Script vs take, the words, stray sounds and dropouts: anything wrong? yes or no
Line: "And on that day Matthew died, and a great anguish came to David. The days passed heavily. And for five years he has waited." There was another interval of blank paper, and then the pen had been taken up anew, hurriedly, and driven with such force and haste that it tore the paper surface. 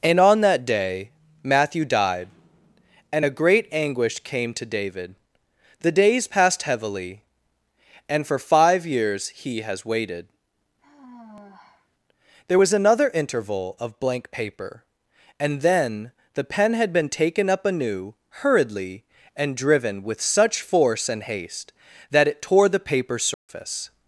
yes